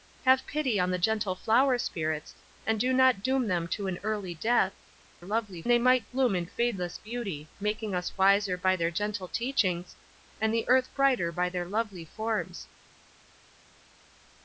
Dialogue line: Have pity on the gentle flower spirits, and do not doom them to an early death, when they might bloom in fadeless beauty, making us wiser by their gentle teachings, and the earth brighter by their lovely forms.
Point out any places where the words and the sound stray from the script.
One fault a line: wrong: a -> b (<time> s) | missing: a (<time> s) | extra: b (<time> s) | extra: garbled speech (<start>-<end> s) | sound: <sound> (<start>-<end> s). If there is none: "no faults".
wrong: when -> lovely (5.2 s)